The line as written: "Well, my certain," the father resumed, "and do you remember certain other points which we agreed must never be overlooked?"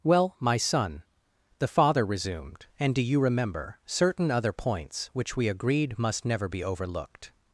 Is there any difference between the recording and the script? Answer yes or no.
yes